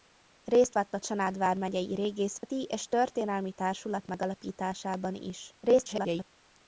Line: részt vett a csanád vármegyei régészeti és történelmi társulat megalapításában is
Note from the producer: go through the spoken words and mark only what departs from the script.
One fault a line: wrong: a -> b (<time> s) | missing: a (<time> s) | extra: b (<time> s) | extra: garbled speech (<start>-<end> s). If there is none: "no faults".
extra: garbled speech (5.6-6.3 s)